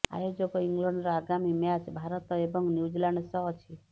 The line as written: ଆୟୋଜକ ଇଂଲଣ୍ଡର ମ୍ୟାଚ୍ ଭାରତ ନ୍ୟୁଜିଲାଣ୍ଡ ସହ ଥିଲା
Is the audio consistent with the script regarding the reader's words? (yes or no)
no